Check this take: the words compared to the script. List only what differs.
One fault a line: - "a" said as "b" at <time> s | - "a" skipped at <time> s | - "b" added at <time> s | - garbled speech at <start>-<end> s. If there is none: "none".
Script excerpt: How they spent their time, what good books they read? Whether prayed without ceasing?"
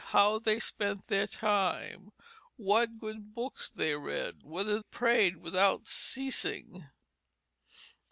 none